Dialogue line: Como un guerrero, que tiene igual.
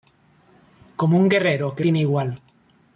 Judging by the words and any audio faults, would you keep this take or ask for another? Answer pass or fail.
pass